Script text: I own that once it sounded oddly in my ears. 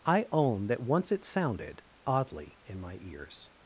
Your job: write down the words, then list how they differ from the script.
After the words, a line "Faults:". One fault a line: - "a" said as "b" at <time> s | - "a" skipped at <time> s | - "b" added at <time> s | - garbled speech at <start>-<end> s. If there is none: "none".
I own that once it sounded oddly in my ears.
Faults:
none